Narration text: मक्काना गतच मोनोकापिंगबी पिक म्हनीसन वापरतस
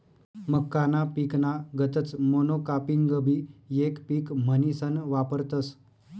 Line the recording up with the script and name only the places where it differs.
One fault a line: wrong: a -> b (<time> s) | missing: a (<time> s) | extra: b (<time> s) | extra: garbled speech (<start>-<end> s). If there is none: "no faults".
extra: पिकना (1.2 s)
extra: येक (3.7 s)